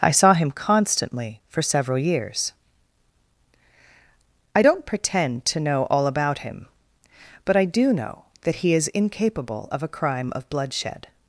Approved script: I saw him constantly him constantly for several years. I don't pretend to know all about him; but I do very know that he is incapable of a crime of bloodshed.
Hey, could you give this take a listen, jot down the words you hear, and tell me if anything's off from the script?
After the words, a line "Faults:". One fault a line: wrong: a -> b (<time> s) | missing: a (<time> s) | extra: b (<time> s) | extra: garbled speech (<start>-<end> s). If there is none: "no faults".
I saw him constantly for several years. I don't pretend to know all about him; but I do know that he is incapable of a crime of bloodshed.
Faults:
missing: him constantly (1.4 s)
missing: very (7.9 s)